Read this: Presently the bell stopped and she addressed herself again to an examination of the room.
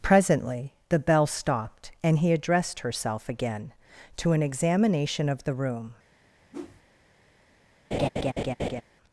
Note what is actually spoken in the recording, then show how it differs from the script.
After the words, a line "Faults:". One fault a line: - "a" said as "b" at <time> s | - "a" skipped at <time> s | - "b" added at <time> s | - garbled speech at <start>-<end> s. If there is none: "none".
Presently the bell stopped and he addressed herself again to an examination of the room.
Faults:
- "she" said as "he" at 2.2 s